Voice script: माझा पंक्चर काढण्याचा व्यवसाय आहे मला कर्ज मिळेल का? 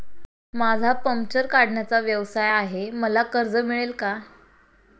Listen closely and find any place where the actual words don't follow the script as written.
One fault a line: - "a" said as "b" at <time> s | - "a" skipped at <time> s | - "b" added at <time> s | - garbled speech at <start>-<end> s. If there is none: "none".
none